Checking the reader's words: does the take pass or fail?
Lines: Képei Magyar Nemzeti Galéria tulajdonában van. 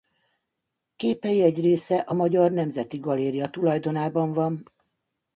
fail